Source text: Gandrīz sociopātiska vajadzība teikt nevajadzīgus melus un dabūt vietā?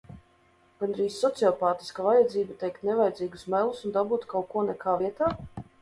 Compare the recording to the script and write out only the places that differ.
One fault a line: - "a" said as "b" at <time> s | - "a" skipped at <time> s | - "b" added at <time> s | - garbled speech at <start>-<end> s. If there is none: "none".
- "kaut ko nekā" added at 4.3 s